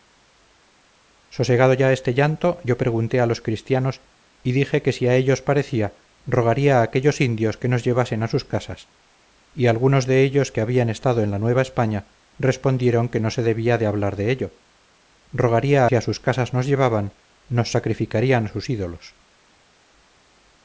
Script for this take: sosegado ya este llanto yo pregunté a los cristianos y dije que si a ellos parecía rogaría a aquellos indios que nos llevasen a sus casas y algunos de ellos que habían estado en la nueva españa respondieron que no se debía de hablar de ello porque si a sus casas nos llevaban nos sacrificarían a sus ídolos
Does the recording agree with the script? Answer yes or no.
no